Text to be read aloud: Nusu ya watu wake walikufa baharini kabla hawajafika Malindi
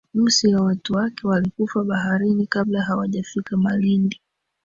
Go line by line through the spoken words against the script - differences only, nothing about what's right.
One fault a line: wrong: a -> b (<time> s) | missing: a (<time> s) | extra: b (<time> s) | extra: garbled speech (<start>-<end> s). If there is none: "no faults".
no faults